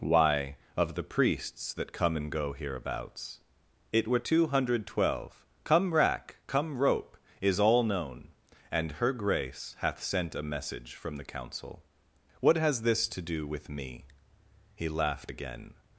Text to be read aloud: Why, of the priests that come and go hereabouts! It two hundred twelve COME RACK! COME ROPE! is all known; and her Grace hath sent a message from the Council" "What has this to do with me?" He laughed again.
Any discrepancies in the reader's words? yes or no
yes